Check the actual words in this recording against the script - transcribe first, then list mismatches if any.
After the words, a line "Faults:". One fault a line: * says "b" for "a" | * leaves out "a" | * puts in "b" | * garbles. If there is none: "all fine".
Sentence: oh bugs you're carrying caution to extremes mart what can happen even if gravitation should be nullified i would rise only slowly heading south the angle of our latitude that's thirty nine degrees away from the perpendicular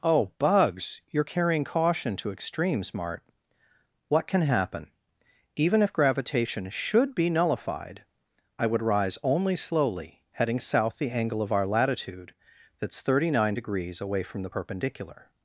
oh bugs you're carrying caution to extremes mart what can happen even if gravitation should be nullified i would rise only slowly heading south the angle of our latitude that's thirty nine degrees away from the perpendicular
Faults:
all fine